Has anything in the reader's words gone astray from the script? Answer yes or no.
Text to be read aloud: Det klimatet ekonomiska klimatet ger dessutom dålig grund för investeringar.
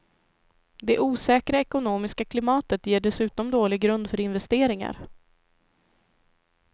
yes